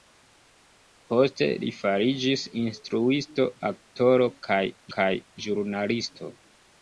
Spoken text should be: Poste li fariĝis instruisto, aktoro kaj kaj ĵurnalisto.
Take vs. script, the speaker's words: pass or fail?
pass